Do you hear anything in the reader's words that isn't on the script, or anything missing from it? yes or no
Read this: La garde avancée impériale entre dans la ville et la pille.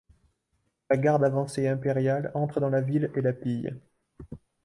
no